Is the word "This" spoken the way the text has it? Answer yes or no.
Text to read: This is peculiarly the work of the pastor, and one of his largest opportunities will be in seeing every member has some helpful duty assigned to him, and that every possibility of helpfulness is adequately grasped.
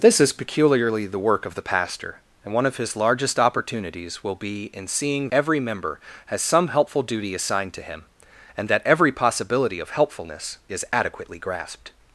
yes